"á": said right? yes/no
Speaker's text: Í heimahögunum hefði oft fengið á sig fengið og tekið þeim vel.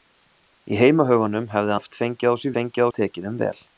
yes